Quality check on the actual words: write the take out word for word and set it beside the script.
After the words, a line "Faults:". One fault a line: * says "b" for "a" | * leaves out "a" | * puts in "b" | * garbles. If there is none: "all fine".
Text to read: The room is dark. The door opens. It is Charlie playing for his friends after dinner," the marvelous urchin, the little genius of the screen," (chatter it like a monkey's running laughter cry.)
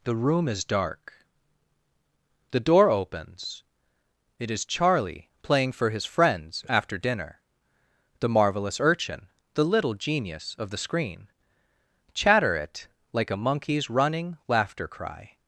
The room is dark. The door opens. It is Charlie playing for his friends after dinner," the marvelous urchin, the little genius of the screen," (chatter it like a monkey's running laughter cry.)
Faults:
all fine